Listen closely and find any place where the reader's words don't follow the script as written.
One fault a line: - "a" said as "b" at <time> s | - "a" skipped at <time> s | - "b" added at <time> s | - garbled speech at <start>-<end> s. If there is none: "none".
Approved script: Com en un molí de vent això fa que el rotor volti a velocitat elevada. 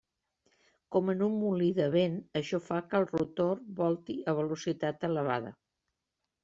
none